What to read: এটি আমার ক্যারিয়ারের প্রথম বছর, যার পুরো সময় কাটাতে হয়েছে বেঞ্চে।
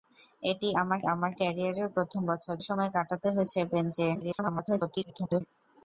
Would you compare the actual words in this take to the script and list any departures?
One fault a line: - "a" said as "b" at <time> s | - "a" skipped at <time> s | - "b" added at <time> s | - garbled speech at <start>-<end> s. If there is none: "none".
- "আমার" added at 1.1 s
- "যার পুরো" skipped at 2.5 s
- garbled speech at 4.2-5.4 s